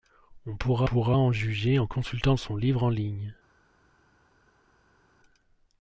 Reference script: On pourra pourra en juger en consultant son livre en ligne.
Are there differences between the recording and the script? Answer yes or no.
no